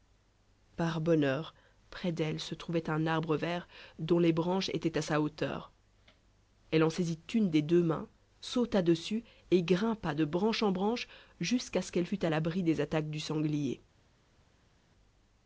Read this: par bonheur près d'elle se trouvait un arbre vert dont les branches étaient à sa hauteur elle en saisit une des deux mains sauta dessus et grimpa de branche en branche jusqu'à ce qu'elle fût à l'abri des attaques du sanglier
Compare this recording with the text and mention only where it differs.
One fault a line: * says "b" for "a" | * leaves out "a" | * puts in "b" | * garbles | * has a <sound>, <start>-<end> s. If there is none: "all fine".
all fine